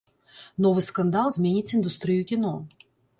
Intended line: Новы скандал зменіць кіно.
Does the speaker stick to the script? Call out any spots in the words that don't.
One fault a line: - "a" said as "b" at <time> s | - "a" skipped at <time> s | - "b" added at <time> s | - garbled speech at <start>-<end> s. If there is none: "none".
- "індустрыю" added at 1.8 s